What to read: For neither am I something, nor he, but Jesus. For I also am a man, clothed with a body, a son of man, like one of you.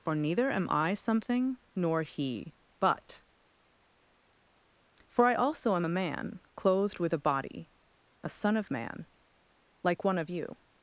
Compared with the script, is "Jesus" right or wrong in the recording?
wrong